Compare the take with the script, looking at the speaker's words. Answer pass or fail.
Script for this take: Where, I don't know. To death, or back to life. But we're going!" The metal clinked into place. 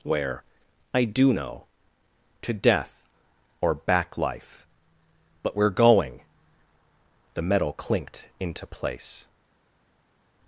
fail